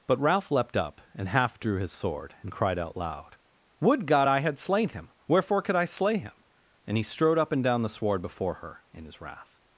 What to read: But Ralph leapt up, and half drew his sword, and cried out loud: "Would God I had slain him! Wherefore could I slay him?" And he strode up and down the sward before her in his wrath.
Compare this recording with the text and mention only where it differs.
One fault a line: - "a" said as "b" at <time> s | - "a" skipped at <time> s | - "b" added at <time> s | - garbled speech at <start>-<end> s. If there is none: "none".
none